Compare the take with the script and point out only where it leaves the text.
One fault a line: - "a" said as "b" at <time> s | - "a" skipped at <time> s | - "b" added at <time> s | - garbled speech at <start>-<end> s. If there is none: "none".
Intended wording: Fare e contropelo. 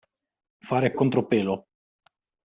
none